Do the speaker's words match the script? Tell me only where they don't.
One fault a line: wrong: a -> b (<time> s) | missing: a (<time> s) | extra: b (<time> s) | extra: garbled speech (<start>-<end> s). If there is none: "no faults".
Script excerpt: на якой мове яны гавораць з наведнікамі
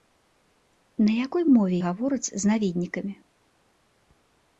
missing: яны (1.8 s)